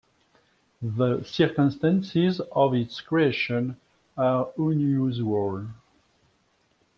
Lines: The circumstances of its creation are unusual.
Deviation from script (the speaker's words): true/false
false